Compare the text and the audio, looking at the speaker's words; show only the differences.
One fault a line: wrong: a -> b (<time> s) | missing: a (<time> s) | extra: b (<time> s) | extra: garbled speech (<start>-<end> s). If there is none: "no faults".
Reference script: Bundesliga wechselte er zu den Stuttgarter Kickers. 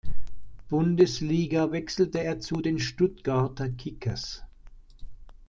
no faults